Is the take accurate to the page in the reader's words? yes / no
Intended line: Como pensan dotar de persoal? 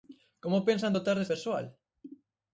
yes